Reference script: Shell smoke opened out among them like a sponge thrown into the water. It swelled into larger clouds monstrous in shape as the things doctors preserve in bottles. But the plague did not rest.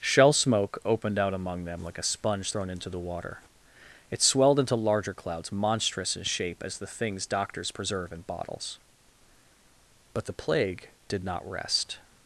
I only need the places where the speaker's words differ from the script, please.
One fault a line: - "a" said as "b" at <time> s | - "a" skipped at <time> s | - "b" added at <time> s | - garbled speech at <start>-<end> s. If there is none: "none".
none